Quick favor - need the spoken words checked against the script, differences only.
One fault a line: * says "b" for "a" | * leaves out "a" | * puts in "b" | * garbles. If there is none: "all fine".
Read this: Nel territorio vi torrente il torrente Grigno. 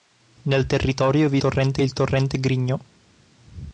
all fine